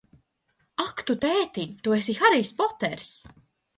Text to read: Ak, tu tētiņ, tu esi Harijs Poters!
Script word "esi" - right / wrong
right